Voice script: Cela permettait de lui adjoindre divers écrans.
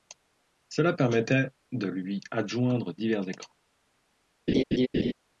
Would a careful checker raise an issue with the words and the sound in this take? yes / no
yes